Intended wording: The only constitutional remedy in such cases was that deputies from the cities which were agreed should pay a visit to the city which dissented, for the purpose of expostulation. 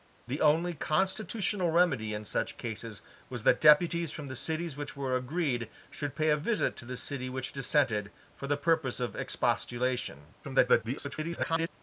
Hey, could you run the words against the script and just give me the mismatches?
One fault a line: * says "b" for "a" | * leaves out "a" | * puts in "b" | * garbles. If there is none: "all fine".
* garbles